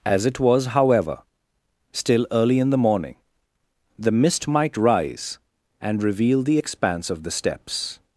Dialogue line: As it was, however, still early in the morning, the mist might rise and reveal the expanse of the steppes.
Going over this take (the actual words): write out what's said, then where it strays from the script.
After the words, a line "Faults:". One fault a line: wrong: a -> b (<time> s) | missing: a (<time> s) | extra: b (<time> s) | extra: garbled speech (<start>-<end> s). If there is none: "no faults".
As it was, however, still early in the morning, the mist might rise and reveal the expanse of the steppes.
Faults:
no faults